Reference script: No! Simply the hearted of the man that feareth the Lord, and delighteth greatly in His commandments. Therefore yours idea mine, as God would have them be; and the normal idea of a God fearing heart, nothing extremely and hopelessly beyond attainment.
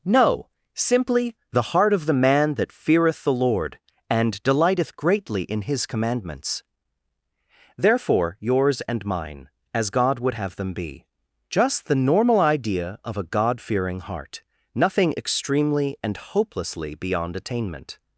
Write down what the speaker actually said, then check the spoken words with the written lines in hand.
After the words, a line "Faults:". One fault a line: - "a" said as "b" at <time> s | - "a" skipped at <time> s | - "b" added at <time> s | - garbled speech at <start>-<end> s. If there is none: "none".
No! Simply the heart of the man that feareth the Lord, and delighteth greatly in His commandments. Therefore yours and mine, as God would have them be; just the normal idea of a God fearing heart, nothing extremely and hopelessly beyond attainment.
Faults:
- "hearted" said as "heart" at 1.7 s
- "idea" said as "and" at 8.8 s
- "and" said as "just" at 11.5 s